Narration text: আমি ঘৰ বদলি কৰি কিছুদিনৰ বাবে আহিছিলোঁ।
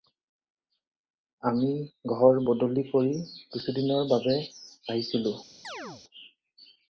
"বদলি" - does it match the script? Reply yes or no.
yes